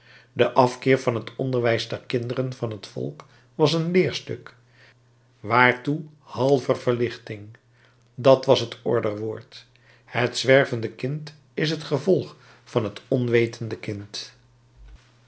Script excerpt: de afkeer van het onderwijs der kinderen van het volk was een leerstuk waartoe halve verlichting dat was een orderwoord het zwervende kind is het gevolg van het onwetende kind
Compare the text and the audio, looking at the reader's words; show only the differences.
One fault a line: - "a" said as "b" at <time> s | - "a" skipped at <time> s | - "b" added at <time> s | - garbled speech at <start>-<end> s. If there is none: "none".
- "een" said as "het" at 8.6 s